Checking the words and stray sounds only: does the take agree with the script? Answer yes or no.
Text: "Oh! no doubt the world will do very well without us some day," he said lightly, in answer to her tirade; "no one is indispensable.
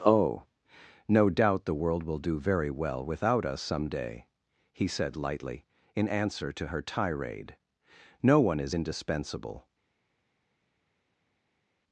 yes